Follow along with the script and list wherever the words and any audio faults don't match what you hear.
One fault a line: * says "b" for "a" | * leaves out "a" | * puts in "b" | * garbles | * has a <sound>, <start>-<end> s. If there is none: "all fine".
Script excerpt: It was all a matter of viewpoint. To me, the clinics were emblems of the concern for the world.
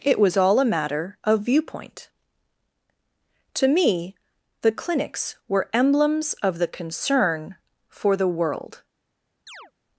* has a chirp, 9.5-9.7 s